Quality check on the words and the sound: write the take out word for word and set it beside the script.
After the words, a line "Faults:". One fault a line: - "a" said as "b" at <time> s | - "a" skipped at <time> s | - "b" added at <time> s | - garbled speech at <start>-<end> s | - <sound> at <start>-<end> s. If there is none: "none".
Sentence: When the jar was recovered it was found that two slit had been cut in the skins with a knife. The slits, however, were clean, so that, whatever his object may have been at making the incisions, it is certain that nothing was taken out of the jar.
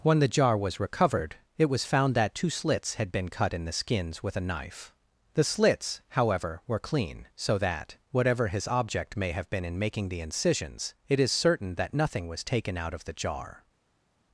When the jar was recovered it was found that two slits had been cut in the skins with a knife. The slits, however, were clean, so that, whatever his object may have been in making the incisions, it is certain that nothing was taken out of the jar.
Faults:
- "slit" said as "slits" at 2.5 s
- "at" said as "in" at 9.7 s